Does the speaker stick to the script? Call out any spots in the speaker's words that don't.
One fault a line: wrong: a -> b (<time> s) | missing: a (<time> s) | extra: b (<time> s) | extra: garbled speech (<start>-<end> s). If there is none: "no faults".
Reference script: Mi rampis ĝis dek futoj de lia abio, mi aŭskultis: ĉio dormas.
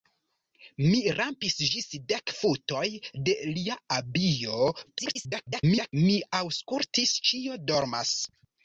extra: garbled speech (4.9-5.9 s)